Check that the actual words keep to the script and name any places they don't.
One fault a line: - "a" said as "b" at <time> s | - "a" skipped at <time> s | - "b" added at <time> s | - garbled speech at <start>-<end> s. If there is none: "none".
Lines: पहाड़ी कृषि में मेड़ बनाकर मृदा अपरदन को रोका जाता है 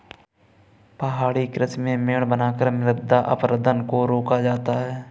none